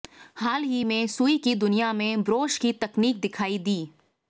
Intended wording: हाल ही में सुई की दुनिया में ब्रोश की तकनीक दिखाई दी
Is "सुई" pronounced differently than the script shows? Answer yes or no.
no